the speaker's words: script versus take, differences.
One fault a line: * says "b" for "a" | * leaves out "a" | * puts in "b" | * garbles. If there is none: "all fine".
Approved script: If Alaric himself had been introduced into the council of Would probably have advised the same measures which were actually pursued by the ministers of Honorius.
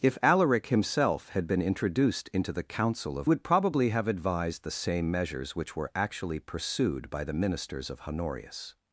all fine